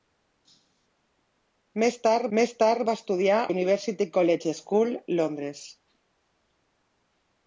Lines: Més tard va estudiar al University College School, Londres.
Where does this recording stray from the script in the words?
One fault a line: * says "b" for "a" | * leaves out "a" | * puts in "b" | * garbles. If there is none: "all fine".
* puts in "més tard"
* leaves out "al"